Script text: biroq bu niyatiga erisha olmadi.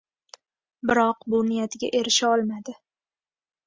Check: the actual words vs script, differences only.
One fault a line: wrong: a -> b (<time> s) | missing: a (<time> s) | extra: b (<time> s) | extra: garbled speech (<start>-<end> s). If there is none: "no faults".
no faults